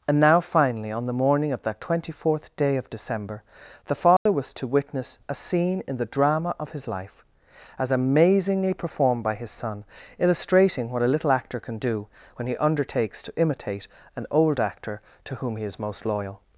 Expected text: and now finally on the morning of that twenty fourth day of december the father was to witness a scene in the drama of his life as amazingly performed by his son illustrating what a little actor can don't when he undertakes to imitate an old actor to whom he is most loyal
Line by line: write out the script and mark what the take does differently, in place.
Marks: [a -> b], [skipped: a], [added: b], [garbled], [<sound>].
and now finally on the morning of that twenty fourth day of december the father [dropout] was to witness a scene in the drama of his life as amazingly performed by his son illustrating what a little actor can [don't -> do] when he undertakes to imitate an old actor to whom he is most loyal